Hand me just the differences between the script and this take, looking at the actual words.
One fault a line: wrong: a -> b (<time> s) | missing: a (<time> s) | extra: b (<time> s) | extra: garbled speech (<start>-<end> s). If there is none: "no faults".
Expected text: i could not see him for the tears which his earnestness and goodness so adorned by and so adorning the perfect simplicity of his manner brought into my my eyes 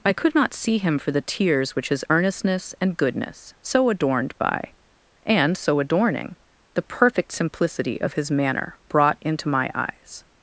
missing: my (9.7 s)